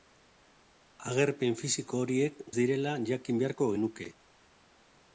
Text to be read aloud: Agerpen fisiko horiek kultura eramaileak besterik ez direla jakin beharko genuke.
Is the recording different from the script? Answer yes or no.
yes